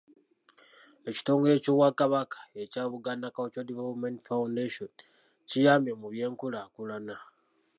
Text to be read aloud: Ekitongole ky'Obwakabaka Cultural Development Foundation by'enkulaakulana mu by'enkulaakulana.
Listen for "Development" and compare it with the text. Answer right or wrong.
right